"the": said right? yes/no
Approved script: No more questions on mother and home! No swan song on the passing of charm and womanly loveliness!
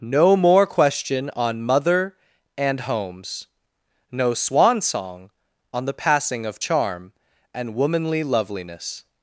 yes